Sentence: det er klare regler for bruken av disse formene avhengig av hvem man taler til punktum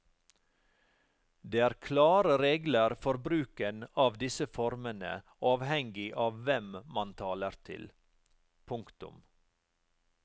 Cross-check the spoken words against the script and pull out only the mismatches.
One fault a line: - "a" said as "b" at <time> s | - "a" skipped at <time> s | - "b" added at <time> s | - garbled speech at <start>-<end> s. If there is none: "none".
none